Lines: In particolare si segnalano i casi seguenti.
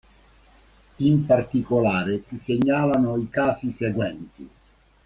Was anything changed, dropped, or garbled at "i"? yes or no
no